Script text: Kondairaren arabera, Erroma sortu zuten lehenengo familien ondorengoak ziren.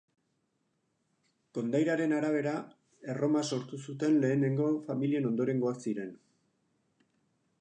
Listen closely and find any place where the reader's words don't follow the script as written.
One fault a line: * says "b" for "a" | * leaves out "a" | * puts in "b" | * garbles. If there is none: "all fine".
all fine